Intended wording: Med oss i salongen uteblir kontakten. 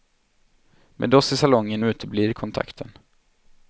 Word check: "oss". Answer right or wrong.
right